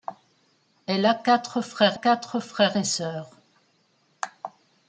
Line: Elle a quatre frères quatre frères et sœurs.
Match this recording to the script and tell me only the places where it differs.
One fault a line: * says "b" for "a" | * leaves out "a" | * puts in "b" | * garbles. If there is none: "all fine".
all fine